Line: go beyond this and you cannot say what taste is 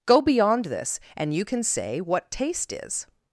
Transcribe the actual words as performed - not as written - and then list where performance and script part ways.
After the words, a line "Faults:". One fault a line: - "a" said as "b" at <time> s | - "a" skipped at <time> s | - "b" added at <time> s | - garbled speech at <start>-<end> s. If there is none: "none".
go beyond this and you can say what taste is
Faults:
- "cannot" said as "can" at 1.4 s